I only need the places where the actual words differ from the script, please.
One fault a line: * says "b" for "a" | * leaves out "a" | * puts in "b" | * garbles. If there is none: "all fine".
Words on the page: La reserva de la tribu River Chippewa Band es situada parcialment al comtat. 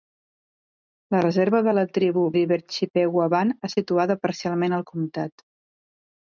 all fine